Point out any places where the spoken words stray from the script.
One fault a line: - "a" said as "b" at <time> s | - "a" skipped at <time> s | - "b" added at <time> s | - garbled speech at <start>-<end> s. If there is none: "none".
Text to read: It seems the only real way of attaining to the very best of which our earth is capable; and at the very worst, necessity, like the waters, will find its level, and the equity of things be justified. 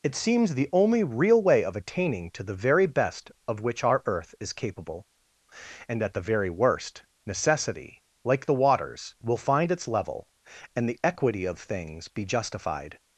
none